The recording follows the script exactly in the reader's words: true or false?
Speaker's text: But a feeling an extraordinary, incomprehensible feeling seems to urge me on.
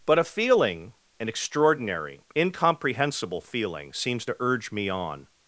true